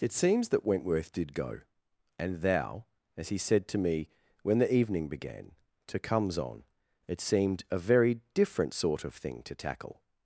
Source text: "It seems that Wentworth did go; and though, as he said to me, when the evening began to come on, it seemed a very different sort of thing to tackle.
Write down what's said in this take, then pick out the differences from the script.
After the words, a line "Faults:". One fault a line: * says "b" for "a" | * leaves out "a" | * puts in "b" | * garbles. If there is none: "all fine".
"It seems that Wentworth did go; and thou, as he said to me, when the evening began to comes on, it seemed a very different sort of thing to tackle.
Faults:
* says "thou" for "though"
* says "comes" for "come"